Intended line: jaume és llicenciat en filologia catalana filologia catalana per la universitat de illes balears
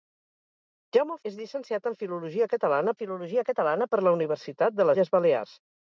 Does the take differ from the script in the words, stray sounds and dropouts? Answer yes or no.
no